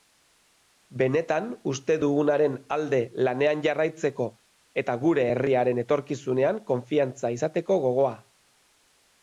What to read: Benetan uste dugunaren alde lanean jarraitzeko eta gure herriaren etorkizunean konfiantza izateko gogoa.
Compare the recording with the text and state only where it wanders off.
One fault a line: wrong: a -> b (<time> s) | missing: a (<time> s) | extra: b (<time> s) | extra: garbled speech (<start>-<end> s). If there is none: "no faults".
no faults